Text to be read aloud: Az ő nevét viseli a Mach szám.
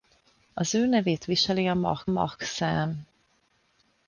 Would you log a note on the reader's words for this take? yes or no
yes